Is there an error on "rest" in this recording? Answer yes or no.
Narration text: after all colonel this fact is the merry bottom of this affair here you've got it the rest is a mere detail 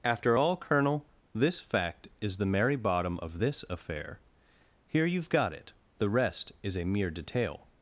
no